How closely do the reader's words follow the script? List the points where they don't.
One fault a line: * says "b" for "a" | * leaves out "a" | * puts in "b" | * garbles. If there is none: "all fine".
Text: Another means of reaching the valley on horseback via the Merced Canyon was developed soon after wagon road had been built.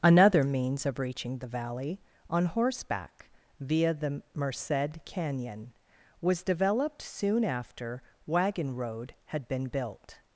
all fine